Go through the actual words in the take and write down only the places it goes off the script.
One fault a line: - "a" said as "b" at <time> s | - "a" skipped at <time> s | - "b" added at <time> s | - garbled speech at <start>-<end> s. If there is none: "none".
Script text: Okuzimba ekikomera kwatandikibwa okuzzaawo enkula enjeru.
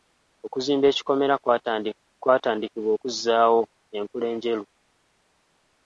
none